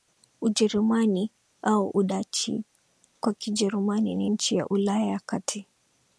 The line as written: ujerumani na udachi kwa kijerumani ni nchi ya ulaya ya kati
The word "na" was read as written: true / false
false